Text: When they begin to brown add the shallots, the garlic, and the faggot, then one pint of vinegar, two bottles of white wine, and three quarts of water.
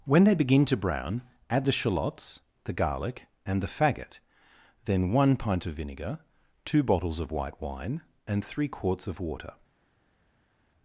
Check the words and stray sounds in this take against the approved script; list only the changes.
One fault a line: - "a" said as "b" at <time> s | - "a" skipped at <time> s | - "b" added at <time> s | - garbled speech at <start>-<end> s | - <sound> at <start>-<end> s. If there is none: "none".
none